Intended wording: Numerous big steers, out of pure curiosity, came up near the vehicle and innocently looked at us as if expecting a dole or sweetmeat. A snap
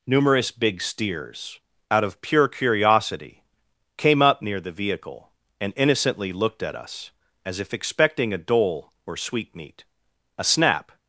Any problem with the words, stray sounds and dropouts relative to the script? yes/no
no